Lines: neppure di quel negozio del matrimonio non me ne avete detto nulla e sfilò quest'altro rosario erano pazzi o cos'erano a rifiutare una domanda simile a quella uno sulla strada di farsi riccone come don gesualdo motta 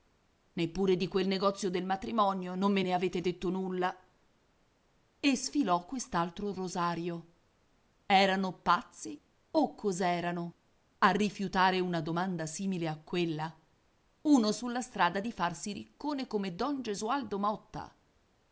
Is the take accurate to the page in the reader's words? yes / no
yes